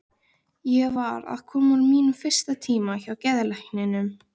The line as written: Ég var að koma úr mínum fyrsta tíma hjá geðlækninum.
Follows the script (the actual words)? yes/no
yes